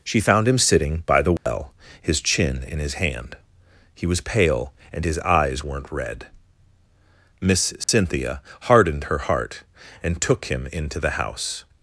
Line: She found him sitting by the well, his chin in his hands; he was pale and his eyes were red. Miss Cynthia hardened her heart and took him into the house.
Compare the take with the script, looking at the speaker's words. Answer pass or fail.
fail